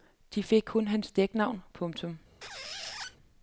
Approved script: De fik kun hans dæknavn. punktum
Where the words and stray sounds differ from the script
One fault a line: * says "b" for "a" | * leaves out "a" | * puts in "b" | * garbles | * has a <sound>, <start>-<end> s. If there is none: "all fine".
* has a squeak, 2.4-3.2 s